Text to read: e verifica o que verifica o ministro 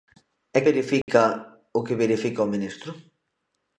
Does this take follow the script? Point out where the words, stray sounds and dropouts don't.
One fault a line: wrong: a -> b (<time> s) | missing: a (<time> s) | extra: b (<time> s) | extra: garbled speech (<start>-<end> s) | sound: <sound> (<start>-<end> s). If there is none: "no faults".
sound: dropout (1.0-1.1 s)